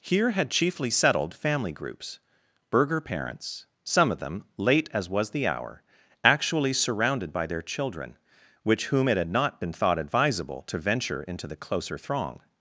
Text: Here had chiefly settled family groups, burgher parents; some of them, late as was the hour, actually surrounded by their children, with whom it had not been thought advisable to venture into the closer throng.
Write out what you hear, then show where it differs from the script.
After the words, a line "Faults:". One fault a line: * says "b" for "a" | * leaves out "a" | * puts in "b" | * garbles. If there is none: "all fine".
Here had chiefly settled family groups, burgher parents; some of them, late as was the hour, actually surrounded by their children, which whom it had not been thought advisable to venture into the closer throng.
Faults:
* says "which" for "with"